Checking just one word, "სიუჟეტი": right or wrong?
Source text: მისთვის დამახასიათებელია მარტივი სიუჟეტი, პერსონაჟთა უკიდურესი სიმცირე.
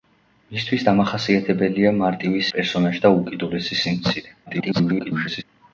wrong